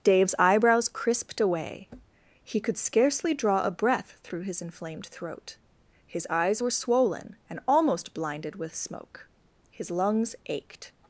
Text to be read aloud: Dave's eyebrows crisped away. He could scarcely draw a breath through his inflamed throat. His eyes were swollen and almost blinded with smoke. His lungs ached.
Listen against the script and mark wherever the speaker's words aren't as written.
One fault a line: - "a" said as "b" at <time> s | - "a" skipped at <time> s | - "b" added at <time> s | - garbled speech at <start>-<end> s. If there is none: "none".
none